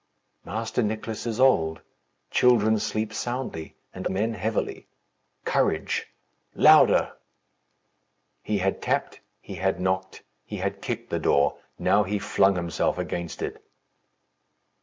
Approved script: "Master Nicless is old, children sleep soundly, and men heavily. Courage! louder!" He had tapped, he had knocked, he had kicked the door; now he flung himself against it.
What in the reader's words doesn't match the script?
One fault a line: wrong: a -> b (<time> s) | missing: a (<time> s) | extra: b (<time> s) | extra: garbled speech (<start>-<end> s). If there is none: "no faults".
no faults